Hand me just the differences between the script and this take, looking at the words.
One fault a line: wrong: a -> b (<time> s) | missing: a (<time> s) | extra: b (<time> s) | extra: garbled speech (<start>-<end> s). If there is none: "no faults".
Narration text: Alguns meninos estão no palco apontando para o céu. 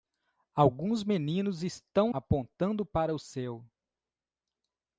missing: no palco (2.1 s)